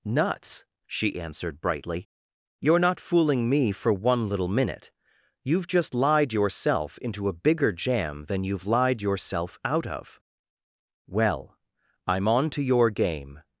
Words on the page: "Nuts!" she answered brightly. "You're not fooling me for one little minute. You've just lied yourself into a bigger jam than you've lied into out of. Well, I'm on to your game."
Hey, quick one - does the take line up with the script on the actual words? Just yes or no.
no